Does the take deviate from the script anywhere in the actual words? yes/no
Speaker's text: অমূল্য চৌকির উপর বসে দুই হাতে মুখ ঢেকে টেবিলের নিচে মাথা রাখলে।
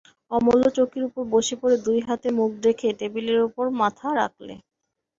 yes